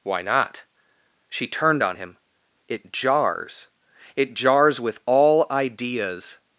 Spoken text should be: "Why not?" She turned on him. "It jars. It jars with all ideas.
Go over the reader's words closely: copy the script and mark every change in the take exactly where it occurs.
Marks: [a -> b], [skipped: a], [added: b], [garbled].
"Why not?" She turned on him. "It jars. It jars with all ideas.